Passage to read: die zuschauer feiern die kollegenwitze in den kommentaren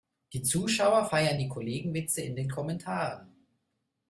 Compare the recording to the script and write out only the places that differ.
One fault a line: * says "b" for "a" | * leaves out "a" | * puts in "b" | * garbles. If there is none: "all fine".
all fine